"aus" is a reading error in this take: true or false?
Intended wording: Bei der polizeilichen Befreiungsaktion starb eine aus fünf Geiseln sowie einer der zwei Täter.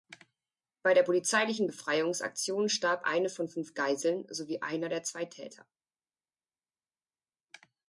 true